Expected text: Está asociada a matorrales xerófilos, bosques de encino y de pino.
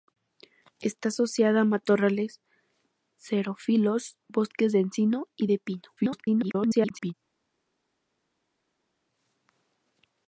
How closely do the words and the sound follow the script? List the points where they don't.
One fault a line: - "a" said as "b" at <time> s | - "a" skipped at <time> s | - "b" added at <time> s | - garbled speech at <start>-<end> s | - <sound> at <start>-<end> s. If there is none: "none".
- garbled speech at 6.0-7.1 s